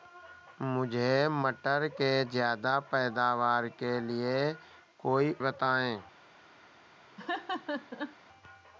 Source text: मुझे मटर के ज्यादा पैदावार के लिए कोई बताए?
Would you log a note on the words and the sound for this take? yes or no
yes